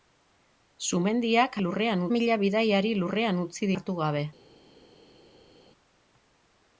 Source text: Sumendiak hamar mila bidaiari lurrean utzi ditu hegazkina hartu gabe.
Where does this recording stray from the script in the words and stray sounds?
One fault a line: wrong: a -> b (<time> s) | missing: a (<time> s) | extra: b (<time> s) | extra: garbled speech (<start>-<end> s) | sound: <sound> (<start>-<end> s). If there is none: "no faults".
wrong: hamar -> lurrean (1.7 s)
missing: ditu hegazkina (3.7 s)